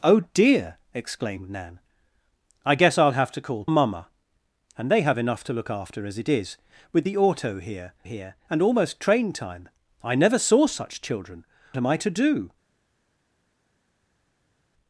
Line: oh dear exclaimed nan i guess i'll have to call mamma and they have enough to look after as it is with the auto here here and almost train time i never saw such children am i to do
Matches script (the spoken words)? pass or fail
pass